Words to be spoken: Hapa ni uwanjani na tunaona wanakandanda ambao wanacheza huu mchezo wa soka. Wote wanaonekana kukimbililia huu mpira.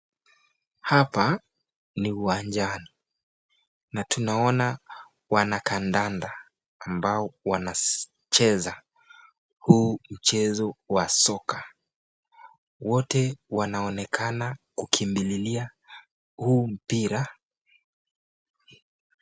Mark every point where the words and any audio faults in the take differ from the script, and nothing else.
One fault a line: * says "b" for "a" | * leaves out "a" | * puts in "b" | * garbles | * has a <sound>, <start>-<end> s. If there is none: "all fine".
all fine